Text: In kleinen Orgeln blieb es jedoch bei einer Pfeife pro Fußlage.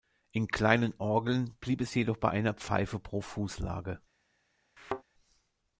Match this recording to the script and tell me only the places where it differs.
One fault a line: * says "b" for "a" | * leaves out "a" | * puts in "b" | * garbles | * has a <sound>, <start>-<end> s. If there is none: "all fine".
* has a thud, 4.8-5.0 s